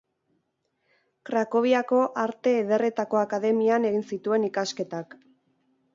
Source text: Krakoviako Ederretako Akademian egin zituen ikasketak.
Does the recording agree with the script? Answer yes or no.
no